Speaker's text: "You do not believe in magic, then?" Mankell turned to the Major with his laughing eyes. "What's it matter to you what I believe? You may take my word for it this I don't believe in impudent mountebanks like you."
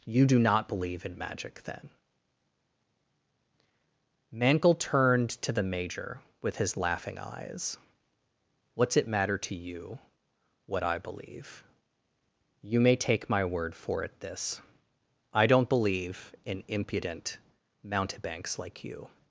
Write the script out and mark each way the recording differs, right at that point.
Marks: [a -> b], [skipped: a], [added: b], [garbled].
"You do not believe in magic, then?" Mankell turned to the Major with his laughing eyes. "What's it matter to you what I believe? You may take my word for it this I don't believe in impudent mountebanks like you."